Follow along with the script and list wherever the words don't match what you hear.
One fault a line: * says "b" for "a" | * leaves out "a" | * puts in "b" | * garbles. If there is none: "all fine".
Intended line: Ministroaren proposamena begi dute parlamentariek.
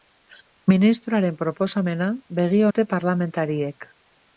all fine